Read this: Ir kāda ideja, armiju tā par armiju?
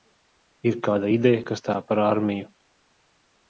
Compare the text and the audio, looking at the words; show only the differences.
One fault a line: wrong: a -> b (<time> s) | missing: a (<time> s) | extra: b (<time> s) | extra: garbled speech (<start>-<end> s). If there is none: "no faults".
wrong: armiju -> kas (1.5 s)